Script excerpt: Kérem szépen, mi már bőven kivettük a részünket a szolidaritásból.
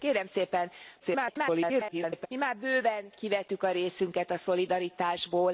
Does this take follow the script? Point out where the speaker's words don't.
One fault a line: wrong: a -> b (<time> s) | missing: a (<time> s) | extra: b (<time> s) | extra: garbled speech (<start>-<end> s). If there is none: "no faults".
extra: garbled speech (1.0-2.3 s)